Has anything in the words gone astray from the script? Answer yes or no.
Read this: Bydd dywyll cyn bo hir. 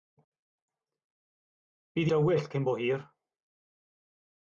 no